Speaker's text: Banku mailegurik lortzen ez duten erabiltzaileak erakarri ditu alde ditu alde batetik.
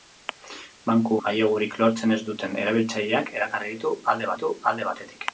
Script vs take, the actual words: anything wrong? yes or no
no